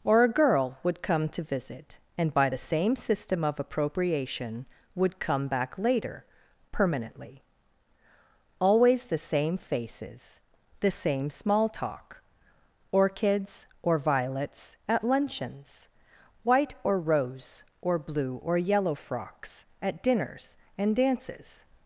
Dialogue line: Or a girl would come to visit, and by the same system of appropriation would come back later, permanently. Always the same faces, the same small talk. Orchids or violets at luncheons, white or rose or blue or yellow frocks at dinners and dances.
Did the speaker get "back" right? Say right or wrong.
right